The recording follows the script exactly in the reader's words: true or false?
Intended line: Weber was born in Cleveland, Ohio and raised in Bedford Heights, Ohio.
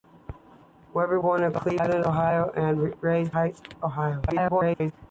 false